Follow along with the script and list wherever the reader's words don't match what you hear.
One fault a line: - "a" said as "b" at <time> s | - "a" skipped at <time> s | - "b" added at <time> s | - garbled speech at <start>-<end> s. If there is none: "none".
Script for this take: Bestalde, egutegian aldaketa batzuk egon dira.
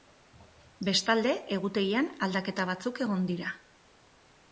none